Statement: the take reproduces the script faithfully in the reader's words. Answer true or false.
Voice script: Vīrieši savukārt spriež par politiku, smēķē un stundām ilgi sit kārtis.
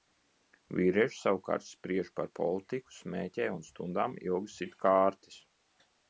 true